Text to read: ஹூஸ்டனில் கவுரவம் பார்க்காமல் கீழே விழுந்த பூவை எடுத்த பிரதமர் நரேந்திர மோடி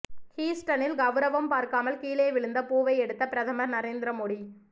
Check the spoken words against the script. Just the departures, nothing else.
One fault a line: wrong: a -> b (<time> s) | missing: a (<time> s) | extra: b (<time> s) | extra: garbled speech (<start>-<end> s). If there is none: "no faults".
no faults